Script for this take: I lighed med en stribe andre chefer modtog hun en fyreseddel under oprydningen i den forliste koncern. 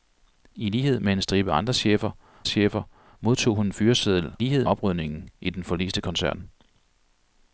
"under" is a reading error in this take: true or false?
true